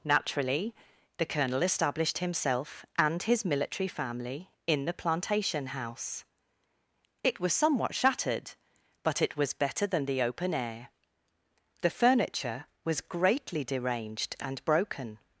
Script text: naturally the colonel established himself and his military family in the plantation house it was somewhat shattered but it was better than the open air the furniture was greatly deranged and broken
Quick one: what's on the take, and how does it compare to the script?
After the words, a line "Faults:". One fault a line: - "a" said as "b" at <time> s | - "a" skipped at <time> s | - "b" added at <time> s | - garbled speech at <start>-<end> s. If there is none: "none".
naturally the colonel established himself and his military family in the plantation house it was somewhat shattered but it was better than the open air the furniture was greatly deranged and broken
Faults:
none